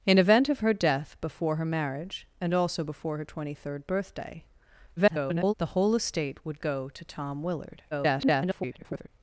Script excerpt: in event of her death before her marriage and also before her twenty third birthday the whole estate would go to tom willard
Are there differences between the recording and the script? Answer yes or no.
yes